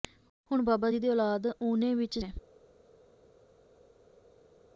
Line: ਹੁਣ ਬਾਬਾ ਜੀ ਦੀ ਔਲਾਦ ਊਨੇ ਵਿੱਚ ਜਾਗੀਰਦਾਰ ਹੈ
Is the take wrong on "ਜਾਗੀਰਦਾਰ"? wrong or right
wrong